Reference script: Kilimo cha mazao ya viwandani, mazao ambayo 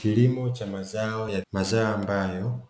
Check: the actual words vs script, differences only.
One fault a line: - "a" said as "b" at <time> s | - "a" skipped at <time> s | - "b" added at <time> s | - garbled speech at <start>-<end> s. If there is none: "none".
- "viwandani" skipped at 1.4 s